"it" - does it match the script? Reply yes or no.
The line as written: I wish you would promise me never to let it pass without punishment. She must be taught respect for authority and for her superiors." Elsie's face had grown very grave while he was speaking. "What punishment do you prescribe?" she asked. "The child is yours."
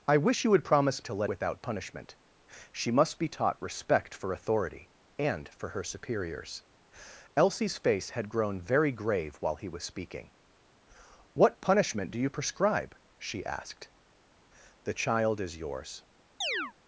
no